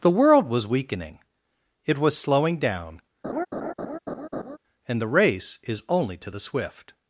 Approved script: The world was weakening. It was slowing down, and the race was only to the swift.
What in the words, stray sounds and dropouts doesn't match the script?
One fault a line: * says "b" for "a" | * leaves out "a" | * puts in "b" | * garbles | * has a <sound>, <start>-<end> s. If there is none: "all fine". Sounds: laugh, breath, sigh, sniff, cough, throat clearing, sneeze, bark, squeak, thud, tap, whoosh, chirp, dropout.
* has a laugh, 3.2-4.6 s
* says "is" for "was"